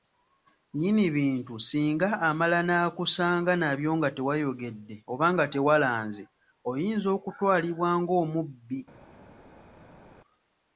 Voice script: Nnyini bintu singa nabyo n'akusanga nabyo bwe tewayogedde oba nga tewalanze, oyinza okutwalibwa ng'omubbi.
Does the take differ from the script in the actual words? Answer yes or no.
yes